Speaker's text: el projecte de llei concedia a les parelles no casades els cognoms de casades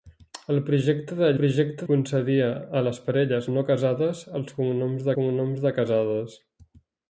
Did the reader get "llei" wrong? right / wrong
wrong